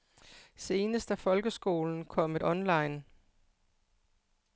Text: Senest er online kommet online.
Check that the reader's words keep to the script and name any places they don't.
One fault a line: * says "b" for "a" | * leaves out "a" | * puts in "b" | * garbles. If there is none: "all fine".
* says "folkeskolen" for "online"